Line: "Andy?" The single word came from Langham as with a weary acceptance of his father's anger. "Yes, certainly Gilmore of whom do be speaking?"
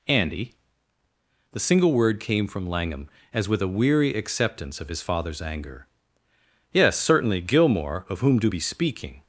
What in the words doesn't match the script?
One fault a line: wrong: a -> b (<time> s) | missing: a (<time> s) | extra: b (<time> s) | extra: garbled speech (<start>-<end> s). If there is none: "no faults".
no faults